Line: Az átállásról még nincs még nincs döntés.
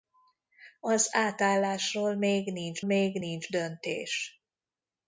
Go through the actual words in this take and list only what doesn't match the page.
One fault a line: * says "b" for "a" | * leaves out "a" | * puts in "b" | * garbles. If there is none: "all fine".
all fine